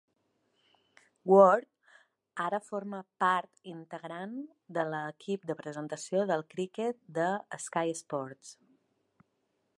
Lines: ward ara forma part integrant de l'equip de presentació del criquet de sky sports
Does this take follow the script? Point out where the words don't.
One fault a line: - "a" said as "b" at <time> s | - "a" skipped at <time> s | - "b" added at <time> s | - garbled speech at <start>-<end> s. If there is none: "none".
none